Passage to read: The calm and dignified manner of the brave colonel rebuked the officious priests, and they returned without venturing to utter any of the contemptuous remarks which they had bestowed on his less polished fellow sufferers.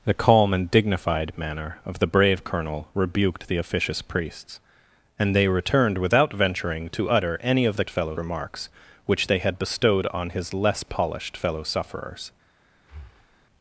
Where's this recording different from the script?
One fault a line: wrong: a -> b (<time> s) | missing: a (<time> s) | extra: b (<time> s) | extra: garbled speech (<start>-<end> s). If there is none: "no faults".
wrong: contemptuous -> fellow (7.9 s)